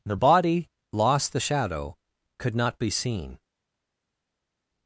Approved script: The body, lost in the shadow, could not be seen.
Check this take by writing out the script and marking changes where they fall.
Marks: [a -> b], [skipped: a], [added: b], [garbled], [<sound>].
The body, lost [skipped: in] the shadow, could not be seen.